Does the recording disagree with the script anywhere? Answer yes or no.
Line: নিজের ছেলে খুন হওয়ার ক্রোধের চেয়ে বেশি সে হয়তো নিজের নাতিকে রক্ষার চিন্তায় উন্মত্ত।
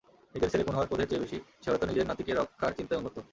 no